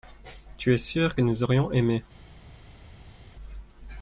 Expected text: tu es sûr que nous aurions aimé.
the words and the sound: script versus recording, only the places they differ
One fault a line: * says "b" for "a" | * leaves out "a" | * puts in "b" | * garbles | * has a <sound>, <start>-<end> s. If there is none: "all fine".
all fine